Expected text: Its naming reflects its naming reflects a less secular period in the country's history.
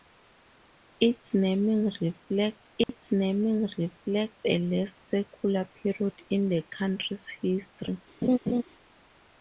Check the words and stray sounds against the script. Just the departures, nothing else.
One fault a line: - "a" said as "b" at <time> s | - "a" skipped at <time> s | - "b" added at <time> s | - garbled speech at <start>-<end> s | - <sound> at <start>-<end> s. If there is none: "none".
- dropout at 2.8-2.9 s
- laugh at 8.2-8.6 s